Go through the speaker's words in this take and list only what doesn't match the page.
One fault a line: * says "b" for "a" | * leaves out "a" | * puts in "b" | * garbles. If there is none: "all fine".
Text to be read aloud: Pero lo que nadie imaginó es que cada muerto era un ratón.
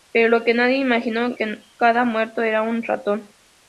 * leaves out "es"